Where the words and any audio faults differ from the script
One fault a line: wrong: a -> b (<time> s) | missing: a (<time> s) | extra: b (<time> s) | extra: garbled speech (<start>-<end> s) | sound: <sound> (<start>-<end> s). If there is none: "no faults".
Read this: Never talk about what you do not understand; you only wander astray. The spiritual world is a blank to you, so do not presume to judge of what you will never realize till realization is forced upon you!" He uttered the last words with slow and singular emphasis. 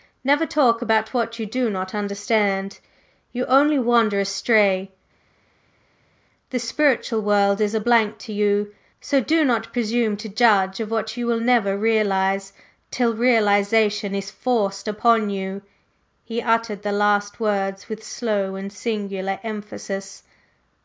no faults